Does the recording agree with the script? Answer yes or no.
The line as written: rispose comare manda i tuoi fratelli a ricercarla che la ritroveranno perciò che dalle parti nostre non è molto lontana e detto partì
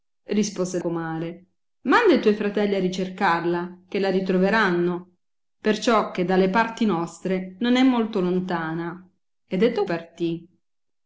yes